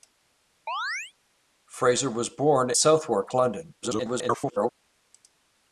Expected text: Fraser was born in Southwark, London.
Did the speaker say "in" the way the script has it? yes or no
no